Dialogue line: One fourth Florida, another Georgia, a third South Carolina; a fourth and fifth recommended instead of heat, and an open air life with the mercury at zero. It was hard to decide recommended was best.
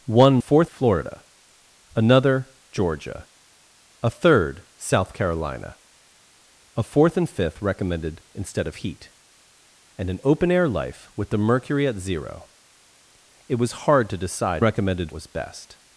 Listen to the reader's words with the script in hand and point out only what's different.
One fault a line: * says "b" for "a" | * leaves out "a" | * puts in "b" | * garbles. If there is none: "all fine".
all fine